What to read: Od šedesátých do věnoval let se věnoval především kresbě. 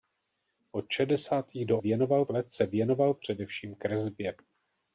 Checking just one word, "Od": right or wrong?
right